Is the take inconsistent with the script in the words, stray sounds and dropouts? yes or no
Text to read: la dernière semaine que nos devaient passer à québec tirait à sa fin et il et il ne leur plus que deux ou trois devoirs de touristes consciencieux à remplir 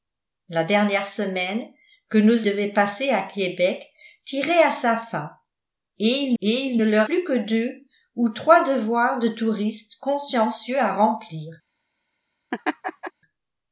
yes